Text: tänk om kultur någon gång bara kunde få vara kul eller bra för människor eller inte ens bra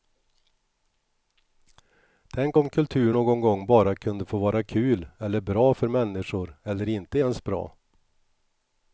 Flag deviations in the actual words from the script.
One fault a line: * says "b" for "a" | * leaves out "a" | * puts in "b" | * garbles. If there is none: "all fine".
all fine